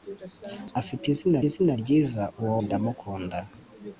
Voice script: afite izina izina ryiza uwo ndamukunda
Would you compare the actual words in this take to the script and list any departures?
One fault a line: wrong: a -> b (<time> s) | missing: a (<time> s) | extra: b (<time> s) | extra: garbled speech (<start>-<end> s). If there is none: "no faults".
no faults